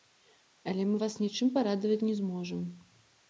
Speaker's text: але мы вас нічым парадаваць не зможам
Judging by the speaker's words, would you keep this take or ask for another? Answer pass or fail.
pass